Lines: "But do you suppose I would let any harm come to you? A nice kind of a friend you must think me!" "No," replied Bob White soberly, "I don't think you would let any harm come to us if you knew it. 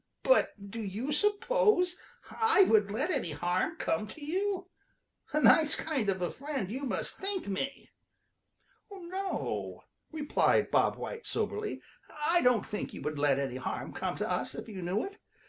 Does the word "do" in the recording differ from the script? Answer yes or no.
no